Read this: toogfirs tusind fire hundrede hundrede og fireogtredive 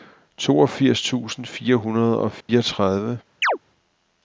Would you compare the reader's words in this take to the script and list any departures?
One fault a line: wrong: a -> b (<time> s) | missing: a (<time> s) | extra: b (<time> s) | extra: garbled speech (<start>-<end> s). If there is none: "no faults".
missing: hundrede (2.2 s)